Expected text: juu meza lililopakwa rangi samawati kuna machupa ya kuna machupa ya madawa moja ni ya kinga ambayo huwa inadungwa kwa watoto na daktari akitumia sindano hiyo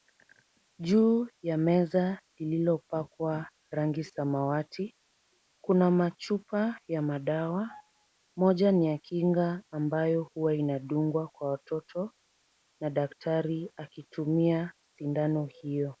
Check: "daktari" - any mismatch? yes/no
no